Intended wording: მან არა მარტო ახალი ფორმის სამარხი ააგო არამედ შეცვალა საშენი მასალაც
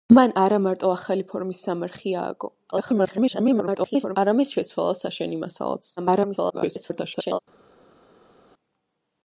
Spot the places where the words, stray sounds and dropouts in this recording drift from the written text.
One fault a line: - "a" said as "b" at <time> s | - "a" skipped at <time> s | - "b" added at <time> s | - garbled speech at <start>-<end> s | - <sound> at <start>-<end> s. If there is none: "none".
- garbled speech at 2.7-4.2 s
- garbled speech at 6.0-7.4 s